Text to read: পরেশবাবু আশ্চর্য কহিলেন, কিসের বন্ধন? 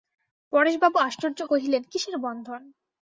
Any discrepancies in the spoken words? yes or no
no